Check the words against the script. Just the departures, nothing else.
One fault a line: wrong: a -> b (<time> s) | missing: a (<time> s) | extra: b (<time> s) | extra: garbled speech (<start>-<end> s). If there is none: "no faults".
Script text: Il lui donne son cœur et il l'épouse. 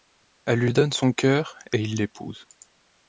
wrong: Il -> Elle (0.5 s)